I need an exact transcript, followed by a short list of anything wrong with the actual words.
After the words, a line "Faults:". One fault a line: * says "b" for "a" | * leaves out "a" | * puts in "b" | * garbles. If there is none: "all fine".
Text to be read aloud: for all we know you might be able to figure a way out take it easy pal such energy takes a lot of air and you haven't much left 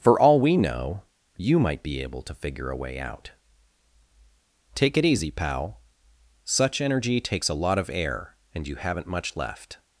for all we know you might be able to figure a way out take it easy pal such energy takes a lot of air and you haven't much left
Faults:
all fine